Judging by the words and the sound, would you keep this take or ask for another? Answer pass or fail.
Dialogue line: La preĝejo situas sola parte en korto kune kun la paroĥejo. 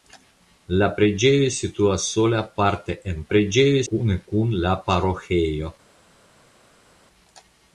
fail